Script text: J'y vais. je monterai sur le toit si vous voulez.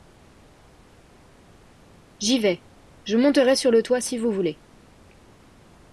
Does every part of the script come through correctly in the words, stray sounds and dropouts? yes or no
yes